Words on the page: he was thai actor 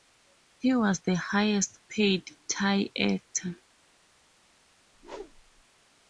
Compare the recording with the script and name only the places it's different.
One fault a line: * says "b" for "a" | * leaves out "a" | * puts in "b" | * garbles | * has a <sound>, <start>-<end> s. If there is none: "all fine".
* puts in "the highest paid"
* has a whoosh, 4.9-5.6 s